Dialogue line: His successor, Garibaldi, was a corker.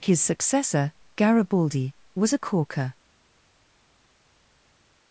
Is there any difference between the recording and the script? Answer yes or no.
no